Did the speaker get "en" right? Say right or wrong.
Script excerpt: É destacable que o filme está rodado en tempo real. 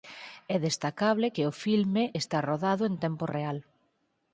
right